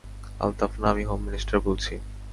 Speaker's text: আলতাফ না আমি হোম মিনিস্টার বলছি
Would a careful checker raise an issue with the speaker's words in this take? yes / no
no